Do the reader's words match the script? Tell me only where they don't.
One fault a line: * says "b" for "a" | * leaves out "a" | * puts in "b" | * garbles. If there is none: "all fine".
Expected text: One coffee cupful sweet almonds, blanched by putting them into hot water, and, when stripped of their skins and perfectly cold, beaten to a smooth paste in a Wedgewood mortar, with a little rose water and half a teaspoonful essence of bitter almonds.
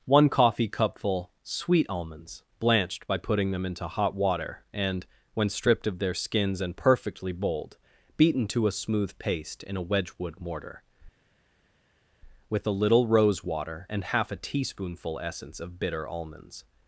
* says "bold" for "cold"